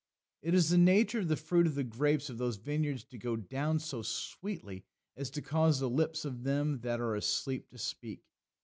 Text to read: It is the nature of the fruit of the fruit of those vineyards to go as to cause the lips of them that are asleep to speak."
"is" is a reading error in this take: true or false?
false